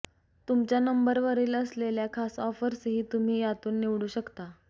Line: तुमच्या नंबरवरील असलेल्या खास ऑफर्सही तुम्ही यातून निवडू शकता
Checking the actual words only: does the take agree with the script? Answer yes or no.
yes